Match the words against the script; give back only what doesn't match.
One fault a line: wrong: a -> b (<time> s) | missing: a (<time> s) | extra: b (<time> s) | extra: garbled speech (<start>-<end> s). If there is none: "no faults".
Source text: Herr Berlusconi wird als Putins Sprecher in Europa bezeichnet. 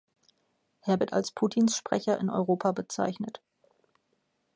missing: Berlusconi (1.0 s)